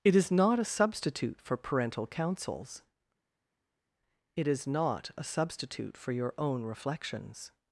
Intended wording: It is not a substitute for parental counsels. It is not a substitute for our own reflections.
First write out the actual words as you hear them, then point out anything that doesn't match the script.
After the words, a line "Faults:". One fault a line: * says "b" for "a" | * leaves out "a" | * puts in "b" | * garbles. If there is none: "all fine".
It is not a substitute for parental counsels. It is not a substitute for your own reflections.
Faults:
* says "your" for "our"